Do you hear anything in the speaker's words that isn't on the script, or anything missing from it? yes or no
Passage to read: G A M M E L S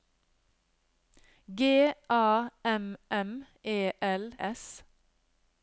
no